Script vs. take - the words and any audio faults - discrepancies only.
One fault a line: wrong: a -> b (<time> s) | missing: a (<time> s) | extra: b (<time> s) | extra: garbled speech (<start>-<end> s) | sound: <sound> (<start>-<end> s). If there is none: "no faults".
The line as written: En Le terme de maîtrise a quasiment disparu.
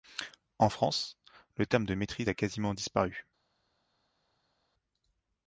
extra: France (0.7 s)